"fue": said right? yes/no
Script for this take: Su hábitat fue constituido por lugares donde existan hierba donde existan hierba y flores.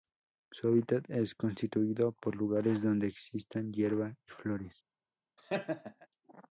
no